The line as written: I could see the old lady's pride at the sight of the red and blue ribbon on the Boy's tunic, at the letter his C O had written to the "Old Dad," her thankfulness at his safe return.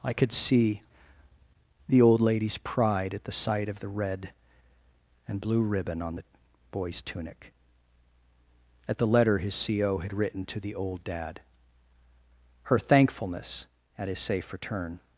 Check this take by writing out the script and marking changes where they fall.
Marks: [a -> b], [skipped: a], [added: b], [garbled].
I could see the old lady's pride at the sight of the red and blue ribbon on the Boy's tunic, at the letter his C O had written to the "Old Dad," her thankfulness at his safe return.